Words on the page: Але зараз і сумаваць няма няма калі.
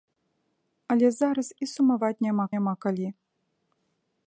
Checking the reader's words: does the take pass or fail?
pass